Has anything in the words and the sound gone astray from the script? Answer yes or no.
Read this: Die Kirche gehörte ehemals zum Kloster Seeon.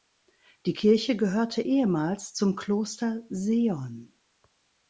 no